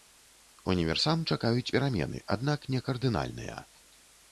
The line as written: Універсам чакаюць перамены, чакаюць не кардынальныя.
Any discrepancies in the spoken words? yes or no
yes